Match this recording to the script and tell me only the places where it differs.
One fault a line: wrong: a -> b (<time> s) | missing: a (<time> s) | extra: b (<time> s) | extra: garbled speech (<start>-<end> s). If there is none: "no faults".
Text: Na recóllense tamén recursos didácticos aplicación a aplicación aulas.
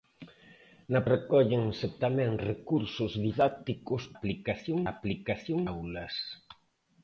no faults